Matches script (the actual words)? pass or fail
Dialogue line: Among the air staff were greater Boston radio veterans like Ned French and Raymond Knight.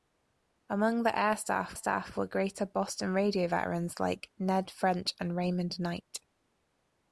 fail